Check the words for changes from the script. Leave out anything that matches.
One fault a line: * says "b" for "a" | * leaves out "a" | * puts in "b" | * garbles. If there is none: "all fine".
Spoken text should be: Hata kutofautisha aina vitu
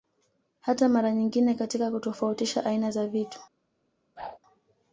* puts in "mara nyingine katika"
* puts in "za"